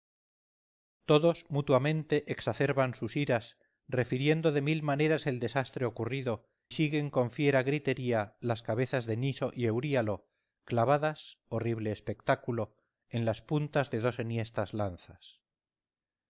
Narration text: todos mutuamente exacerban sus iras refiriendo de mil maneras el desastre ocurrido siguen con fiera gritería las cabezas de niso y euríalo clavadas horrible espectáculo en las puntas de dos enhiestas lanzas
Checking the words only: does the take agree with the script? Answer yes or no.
yes